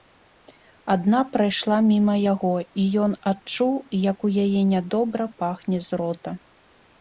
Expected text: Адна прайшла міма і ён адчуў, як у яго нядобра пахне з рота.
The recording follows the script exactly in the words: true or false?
false